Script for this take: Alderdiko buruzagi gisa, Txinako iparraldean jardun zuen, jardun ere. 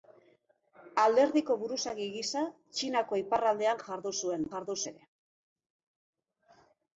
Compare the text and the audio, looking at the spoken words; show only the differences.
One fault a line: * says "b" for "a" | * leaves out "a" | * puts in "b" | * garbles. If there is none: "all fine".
all fine